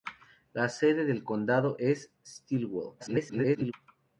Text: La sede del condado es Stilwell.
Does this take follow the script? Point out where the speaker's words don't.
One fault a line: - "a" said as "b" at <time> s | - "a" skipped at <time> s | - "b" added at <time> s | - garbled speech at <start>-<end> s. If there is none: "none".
- garbled speech at 3.0-3.7 s